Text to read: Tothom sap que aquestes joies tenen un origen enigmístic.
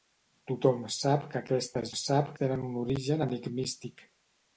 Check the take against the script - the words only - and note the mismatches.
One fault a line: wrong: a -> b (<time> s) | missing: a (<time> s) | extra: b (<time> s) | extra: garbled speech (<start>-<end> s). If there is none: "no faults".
wrong: joies -> sap (2.0 s)